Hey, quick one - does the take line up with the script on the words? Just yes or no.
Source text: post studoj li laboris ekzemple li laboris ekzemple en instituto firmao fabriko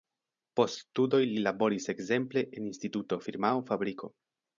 no